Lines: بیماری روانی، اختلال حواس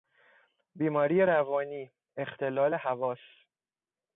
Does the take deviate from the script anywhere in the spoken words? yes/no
no